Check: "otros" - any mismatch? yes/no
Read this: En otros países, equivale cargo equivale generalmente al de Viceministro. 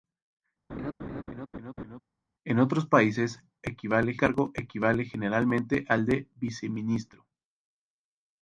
no